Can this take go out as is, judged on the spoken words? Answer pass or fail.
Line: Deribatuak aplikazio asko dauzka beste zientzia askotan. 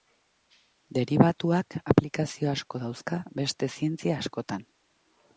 pass